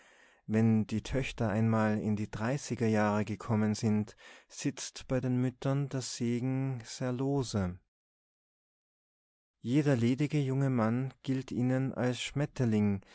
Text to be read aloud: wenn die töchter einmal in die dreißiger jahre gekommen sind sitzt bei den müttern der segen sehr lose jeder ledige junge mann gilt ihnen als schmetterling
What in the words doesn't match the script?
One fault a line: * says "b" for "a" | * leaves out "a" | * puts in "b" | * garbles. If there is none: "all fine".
all fine